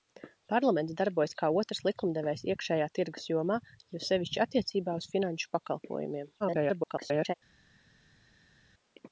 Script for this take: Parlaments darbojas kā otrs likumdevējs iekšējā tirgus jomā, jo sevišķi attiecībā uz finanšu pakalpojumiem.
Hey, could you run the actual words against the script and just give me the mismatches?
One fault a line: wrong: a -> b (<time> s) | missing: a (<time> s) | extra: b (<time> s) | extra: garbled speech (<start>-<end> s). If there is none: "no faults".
extra: garbled speech (6.4-7.3 s)